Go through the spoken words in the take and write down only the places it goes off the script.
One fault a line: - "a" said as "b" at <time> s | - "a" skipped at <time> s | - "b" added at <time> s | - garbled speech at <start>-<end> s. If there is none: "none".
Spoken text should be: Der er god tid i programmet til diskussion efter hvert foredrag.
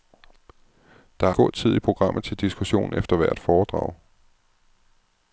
none